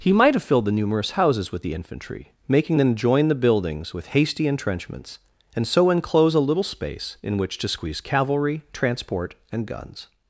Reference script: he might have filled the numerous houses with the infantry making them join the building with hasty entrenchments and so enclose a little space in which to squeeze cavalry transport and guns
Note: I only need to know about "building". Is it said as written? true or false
false